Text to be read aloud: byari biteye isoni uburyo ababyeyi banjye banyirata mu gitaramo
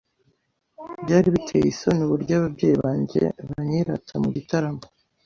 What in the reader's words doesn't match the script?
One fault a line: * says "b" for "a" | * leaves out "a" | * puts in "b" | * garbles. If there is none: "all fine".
all fine